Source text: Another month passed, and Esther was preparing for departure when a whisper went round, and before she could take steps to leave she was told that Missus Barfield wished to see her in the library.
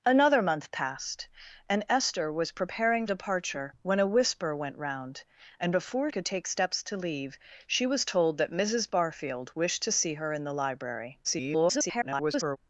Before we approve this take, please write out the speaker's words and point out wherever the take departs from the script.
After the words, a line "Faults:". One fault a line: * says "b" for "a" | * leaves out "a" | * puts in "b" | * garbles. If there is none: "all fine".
Another month passed, and Esther was preparing departure when a whisper went round, and before could take steps to leave she was told that Missus Barfield wished to see her in the library. [garbled]
Faults:
* leaves out "for"
* leaves out "she"
* garbles